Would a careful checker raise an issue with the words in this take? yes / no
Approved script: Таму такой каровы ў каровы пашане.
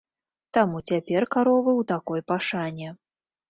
yes